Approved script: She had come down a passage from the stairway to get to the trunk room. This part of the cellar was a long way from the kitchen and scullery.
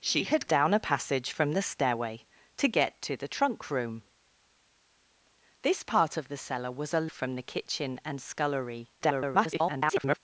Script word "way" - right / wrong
wrong